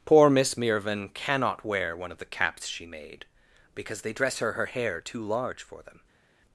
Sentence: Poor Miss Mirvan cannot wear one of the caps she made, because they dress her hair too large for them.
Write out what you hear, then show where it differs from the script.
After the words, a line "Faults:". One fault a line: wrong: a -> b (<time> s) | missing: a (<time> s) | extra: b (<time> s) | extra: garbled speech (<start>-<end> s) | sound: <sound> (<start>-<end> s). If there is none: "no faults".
Poor Miss Mirvan cannot wear one of the caps she made, because they dress her her hair too large for them.
Faults:
extra: her (4.5 s)